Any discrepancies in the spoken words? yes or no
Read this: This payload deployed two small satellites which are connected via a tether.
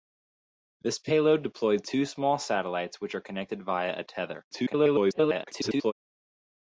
yes